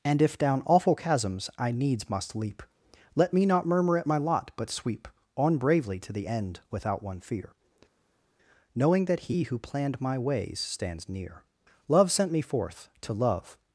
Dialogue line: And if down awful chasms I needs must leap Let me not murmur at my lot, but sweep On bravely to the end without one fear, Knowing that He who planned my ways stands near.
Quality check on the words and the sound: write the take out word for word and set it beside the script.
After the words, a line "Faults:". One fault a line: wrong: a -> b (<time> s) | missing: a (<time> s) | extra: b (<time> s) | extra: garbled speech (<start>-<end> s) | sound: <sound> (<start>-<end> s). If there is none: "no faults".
And if down awful chasms I needs must leap Let me not murmur at my lot, but sweep On bravely to the end without one fear, Knowing that He who planned my ways stands near. Love sent me forth, to Love
Faults:
extra: Love sent me forth to Love (11.9 s)